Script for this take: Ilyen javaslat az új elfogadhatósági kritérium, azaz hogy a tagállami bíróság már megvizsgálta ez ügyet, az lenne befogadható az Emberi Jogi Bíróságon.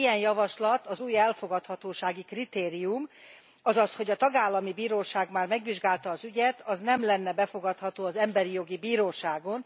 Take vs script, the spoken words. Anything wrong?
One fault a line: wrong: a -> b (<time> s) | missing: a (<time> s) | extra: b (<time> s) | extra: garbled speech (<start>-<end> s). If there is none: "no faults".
wrong: ez -> az (6.1 s)
extra: nem (6.8 s)